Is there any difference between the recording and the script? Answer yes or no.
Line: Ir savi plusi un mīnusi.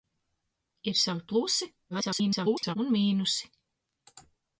yes